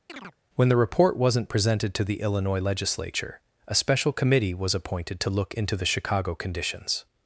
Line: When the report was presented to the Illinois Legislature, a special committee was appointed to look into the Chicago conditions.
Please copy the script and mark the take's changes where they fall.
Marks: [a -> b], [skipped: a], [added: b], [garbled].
When the report [was -> wasn't] presented to the Illinois Legislature, a special committee was appointed to look into the Chicago conditions.